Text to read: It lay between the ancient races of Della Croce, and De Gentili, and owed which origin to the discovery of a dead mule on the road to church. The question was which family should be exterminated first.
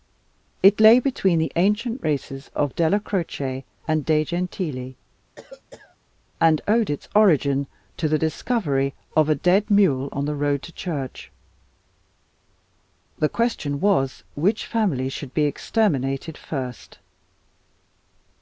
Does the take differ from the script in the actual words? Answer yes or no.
yes